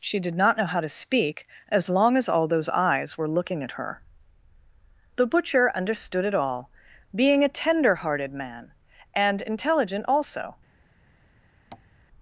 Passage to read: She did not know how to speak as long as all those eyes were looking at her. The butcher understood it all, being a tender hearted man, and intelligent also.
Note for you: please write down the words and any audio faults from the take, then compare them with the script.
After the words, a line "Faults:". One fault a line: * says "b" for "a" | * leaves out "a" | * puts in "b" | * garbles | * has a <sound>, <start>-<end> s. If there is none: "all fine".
She did not know how to speak as long as all those eyes were looking at her. The butcher understood it all, being a tender hearted man, and intelligent also.
Faults:
* has a tap, 11.7-11.9 s